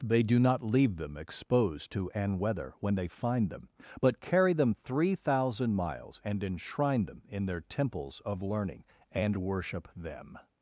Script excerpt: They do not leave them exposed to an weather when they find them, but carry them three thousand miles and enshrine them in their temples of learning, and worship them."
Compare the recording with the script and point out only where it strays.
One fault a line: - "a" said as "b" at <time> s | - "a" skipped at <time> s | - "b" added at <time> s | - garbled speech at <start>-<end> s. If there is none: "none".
none